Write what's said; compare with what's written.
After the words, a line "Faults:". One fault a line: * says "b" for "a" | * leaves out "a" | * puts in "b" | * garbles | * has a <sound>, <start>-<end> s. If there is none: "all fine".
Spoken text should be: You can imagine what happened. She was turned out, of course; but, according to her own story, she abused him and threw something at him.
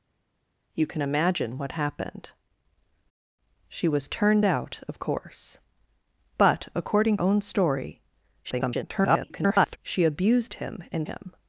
You can imagine what happened. She was turned out, of course; but, according own story, [garbled] she abused him and him.
Faults:
* leaves out "to her"
* garbles
* leaves out "threw something at"